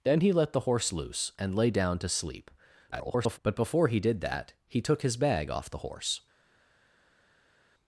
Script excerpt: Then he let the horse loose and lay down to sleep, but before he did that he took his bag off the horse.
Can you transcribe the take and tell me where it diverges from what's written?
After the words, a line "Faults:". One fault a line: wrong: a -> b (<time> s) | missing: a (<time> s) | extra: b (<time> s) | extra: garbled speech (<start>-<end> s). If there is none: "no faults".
Then he let the horse loose and lay down to sleep, [garbled] but before he did that he took his bag off the horse.
Faults:
extra: garbled speech (2.9-3.4 s)